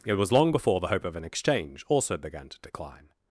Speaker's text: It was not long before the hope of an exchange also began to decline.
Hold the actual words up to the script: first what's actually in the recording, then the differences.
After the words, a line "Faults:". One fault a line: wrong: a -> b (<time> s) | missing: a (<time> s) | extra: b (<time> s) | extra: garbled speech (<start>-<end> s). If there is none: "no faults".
It was long before the hope of an exchange also began to decline.
Faults:
missing: not (0.3 s)